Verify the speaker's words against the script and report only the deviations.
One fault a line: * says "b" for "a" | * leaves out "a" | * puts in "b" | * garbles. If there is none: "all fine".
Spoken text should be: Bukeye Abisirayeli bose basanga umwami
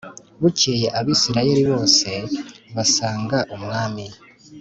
all fine